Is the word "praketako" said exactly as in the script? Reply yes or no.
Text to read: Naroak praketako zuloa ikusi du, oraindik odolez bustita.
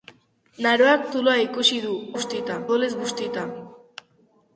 no